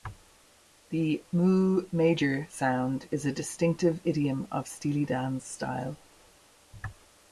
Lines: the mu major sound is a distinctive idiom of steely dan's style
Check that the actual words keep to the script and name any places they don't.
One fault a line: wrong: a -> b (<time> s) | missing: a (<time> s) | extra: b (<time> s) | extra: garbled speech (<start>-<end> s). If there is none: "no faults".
no faults